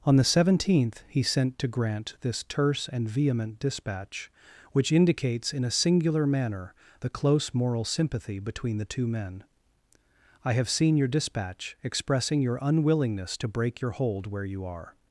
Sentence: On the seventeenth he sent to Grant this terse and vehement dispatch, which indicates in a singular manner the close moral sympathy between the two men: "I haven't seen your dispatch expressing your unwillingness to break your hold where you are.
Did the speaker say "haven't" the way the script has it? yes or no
no